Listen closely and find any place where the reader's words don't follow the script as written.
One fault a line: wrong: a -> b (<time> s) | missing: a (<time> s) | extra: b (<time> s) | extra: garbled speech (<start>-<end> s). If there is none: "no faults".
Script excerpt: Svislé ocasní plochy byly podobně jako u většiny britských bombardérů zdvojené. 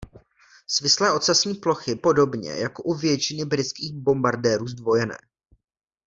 missing: byly (1.9 s)